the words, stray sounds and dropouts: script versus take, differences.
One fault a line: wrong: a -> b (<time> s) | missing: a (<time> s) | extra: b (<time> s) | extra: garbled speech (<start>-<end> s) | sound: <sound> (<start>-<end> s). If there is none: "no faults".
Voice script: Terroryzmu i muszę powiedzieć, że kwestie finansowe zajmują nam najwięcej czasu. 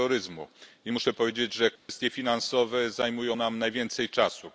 sound: dropout (1.8-1.9 s)